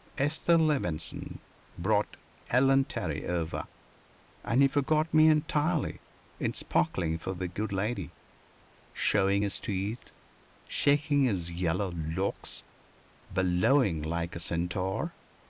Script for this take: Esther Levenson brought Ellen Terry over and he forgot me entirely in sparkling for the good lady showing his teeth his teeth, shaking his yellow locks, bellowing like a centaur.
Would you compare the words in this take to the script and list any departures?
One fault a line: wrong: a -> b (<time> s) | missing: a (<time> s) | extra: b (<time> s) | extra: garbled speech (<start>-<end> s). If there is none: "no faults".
missing: his teeth (10.1 s)